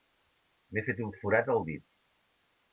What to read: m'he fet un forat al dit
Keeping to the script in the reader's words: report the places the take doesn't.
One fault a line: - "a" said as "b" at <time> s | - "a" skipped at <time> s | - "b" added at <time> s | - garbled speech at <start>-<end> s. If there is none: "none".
none